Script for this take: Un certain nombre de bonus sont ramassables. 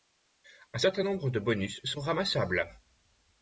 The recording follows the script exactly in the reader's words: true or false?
true